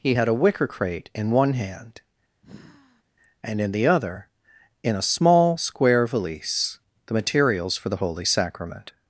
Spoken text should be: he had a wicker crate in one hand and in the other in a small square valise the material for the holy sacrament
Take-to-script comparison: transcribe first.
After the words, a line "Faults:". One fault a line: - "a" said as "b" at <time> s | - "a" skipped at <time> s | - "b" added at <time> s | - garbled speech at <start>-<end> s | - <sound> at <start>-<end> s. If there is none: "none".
he had a wicker crate in one hand and in the other in a small square valise the materials for the holy sacrament
Faults:
- sigh at 2.4-3.0 s
- "material" said as "materials" at 7.1 s